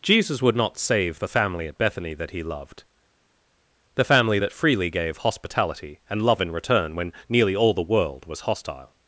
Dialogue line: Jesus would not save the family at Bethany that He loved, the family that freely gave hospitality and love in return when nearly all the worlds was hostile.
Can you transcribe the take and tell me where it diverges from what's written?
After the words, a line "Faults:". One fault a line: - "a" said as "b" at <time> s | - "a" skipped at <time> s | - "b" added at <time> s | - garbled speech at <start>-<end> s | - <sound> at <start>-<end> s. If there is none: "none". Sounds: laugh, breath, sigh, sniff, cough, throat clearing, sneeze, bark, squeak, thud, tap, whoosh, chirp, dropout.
Jesus would not save the family at Bethany that He loved, the family that freely gave hospitality and love in return when nearly all the world was hostile.
Faults:
- "worlds" said as "world" at 7.8 s